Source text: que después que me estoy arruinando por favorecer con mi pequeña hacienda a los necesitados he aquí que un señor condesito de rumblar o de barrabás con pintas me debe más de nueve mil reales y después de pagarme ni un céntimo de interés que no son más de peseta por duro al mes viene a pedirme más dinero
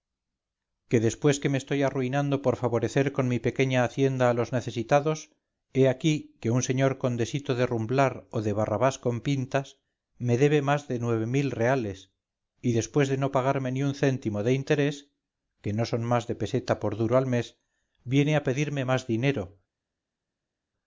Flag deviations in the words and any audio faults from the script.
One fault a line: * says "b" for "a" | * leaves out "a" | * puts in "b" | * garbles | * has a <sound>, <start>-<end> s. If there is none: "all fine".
* puts in "no"